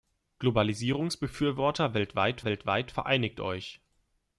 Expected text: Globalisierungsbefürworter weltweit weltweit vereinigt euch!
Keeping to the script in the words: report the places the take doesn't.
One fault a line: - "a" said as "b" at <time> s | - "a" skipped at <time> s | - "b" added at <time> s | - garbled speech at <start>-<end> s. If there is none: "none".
none